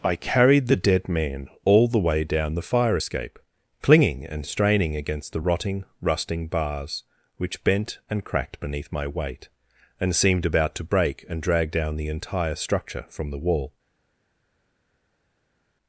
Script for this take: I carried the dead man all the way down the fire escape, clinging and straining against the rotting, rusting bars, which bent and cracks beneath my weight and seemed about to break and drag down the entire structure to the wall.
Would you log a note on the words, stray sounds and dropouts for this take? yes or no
yes